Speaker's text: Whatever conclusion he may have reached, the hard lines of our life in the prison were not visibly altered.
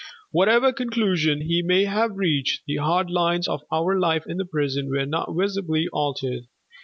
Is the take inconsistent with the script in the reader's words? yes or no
no